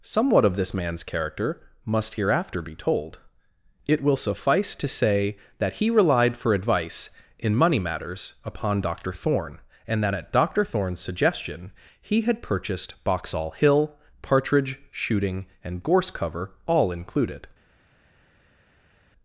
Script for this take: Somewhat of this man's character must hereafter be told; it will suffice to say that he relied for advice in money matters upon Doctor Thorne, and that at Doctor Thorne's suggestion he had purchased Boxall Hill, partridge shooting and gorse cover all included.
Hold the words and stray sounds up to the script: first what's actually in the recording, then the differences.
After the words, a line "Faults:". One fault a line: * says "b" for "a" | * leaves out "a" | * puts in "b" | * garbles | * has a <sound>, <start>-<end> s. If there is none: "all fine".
Somewhat of this man's character must hereafter be told; it will suffice to say that he relied for advice in money matters upon Doctor Thorne, and that at Doctor Thorne's suggestion he had purchased Boxall Hill, partridge shooting and gorse cover all included.
Faults:
all fine